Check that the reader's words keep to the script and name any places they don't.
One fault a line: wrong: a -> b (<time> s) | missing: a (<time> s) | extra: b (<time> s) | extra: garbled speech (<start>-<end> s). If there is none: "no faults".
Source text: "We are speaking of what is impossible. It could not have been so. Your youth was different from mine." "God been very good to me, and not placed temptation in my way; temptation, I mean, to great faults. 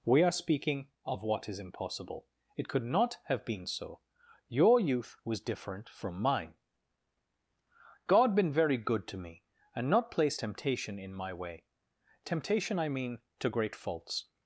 no faults